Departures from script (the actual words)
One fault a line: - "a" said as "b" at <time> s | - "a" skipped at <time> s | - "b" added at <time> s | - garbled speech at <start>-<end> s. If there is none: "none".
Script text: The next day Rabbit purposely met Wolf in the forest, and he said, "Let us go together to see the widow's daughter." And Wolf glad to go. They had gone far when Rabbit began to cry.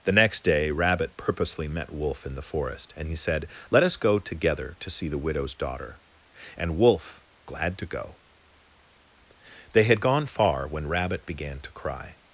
none